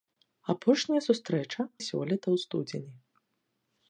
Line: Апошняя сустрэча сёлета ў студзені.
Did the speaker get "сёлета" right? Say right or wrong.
right